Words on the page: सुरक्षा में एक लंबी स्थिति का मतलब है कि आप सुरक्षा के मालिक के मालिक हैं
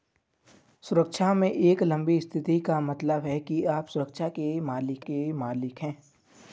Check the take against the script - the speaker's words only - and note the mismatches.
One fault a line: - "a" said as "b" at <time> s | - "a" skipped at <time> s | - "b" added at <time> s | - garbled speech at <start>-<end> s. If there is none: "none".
none